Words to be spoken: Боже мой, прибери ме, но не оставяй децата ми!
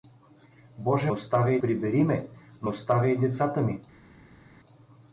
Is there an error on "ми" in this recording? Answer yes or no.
no